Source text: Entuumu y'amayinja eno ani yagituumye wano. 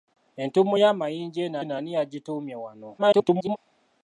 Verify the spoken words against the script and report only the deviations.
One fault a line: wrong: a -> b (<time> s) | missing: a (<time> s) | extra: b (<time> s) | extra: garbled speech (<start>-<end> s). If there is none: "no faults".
extra: eno (1.6 s)
extra: garbled speech (3.0-3.6 s)